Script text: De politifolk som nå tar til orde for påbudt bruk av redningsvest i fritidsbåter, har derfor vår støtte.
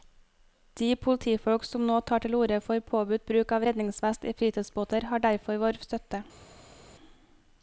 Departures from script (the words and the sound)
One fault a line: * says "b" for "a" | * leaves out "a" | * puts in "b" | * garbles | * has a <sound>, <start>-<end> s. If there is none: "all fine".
all fine